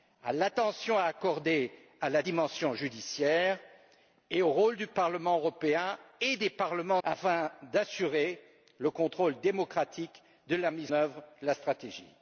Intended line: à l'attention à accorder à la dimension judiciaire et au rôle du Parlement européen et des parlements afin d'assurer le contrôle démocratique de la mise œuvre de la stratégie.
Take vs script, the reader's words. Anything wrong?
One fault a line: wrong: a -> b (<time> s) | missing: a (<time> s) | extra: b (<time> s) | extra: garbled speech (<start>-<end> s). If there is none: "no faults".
no faults